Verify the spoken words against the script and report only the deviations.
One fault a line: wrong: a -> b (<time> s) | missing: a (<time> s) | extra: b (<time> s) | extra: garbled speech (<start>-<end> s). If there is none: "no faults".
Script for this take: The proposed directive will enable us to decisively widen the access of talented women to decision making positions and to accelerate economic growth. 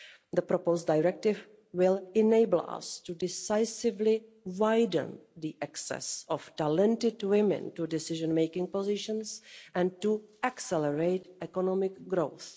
no faults